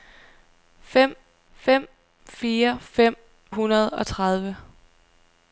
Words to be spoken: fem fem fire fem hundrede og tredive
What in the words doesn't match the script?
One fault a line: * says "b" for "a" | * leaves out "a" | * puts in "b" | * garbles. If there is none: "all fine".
all fine